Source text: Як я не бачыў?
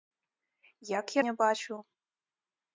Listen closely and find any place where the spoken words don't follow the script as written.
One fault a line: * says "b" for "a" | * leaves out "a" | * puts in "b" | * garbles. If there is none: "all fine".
all fine